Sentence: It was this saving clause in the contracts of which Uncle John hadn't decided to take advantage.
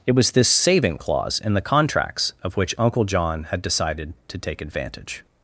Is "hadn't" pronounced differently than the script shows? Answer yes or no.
yes